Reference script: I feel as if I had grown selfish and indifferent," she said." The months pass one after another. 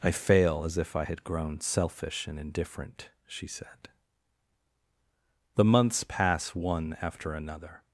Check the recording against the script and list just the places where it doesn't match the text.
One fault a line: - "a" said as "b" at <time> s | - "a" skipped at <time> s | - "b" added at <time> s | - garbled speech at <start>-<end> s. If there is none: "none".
- "feel" said as "fail" at 0.1 s